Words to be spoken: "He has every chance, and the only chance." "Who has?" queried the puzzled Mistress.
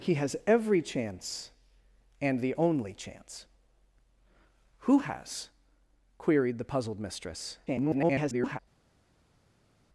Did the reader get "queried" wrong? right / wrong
right